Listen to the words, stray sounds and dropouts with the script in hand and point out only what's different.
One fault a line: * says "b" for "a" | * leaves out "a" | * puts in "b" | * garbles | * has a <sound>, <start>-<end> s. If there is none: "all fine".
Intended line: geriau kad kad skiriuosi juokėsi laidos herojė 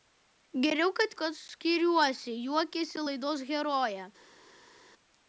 all fine